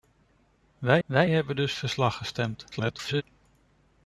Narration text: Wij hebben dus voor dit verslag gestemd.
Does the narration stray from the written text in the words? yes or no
yes